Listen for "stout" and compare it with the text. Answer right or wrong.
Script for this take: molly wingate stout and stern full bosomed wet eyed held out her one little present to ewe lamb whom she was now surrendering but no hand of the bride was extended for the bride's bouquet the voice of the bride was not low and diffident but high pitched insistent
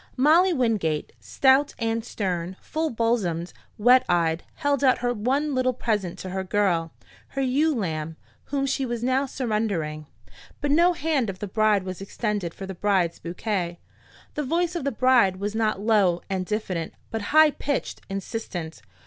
right